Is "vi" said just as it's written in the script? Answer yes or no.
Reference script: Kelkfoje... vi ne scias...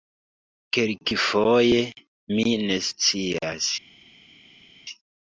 no